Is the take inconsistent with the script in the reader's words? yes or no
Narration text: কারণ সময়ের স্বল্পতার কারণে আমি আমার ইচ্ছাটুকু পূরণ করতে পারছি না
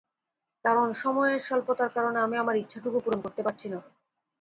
no